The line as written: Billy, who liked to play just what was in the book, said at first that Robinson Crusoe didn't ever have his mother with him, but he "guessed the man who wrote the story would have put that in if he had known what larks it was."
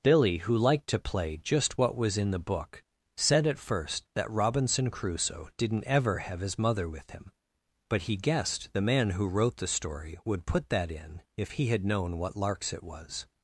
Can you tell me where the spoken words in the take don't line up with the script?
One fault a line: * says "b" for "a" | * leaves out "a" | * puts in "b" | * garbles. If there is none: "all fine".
* leaves out "have"